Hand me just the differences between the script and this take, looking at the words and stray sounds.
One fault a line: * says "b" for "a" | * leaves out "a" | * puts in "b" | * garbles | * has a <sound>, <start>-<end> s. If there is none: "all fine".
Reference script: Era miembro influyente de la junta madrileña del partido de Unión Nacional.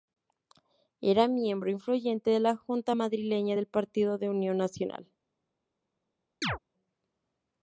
* has a chirp, 6.4-6.6 s